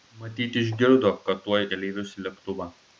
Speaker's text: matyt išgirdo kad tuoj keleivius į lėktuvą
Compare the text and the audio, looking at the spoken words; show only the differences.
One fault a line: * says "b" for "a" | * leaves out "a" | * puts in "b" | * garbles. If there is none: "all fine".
all fine